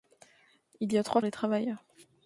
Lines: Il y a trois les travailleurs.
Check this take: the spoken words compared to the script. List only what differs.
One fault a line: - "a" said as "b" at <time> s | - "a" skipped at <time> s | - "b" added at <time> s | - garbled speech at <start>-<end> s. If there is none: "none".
none